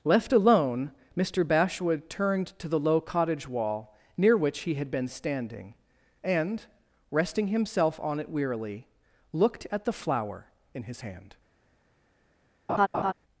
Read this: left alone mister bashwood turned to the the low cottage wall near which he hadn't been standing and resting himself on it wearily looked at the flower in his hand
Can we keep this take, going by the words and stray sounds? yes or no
no